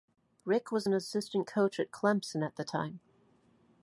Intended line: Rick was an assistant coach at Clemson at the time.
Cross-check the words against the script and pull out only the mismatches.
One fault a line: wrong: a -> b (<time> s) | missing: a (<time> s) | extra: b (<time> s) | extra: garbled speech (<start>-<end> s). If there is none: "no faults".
no faults